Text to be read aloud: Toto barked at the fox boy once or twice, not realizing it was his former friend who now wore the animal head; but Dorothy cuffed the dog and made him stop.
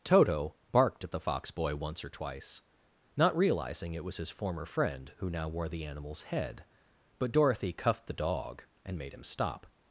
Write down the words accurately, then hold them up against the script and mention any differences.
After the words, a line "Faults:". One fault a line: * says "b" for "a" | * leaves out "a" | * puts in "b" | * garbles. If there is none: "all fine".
Toto barked at the fox boy once or twice, not realizing it was his former friend who now wore the animals head; but Dorothy cuffed the dog and made him stop.
Faults:
* says "animals" for "animal"